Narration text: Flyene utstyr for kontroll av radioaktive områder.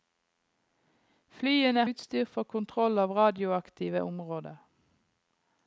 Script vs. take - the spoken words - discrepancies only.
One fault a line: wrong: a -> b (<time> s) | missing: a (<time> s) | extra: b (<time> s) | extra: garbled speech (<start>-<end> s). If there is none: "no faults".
no faults